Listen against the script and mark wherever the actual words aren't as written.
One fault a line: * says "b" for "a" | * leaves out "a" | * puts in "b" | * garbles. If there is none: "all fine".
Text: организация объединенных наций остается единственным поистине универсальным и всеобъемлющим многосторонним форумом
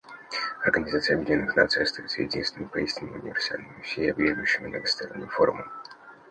all fine